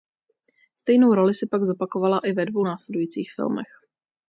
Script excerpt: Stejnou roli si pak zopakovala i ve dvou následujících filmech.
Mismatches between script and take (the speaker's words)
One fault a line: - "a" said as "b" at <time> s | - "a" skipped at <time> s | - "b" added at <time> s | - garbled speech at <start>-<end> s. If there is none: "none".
none